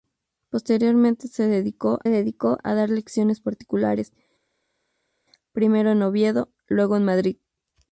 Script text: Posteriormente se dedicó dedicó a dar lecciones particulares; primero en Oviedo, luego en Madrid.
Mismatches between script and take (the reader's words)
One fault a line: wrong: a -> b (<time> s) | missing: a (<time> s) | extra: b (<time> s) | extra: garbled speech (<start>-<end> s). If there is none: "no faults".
no faults